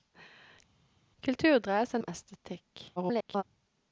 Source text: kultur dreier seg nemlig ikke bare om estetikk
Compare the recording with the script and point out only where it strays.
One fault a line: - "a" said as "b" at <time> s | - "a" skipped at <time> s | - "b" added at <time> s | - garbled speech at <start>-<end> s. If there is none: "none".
- "nemlig ikke bare" skipped at 2.0 s
- garbled speech at 3.0-3.4 s